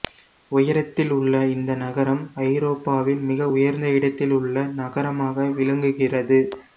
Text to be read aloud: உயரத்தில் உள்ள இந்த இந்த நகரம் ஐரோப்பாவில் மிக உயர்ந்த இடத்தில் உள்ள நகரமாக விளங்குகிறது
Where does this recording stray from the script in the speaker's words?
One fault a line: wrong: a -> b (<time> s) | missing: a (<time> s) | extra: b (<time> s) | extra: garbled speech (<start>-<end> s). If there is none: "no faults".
missing: இந்த (1.7 s)